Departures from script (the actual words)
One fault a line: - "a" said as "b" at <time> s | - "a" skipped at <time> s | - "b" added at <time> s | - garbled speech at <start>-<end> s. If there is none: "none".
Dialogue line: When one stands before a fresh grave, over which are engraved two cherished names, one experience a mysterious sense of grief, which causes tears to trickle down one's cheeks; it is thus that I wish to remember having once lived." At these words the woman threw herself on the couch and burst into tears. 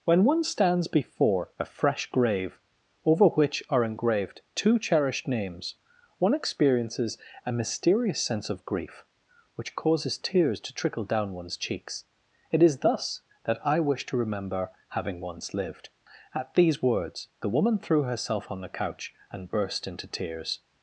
- "experience" said as "experiences" at 6.3 s